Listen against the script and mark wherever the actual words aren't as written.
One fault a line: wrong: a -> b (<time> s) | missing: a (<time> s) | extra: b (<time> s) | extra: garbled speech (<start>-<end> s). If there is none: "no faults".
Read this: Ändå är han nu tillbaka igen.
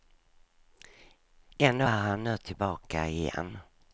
no faults